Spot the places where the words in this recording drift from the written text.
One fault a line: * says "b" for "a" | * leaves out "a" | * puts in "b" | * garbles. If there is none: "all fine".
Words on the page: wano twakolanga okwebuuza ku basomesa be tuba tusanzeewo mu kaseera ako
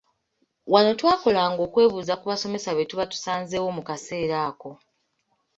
all fine